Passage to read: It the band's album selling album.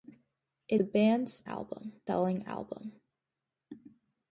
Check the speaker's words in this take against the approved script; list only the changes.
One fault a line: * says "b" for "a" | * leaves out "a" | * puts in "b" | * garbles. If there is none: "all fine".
all fine